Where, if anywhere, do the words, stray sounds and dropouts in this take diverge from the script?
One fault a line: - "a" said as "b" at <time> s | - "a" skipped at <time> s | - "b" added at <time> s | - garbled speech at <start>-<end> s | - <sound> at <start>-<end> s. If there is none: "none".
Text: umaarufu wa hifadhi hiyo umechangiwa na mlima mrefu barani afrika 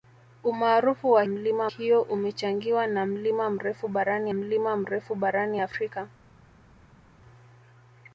- "hifadhi" said as "mlima" at 1.3 s
- "mlima mrefu barani" added at 4.3 s